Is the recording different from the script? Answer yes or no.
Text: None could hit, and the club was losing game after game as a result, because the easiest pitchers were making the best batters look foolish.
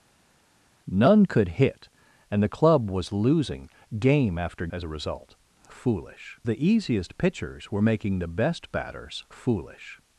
yes